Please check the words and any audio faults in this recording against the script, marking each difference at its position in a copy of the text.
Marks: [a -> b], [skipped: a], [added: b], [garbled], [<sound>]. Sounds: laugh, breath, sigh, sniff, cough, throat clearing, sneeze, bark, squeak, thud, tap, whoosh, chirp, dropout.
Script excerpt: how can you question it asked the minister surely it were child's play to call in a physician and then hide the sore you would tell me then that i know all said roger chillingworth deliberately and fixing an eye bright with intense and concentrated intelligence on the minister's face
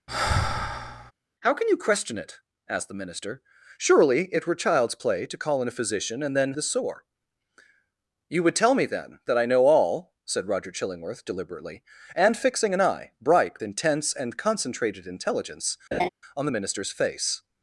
[sigh] how can you question it asked the minister surely it were child's play to call in a physician and then [skipped: hide] the sore you would tell me then that i know all said roger chillingworth deliberately and fixing an eye bright [skipped: with] intense and concentrated intelligence [laugh] on the minister's face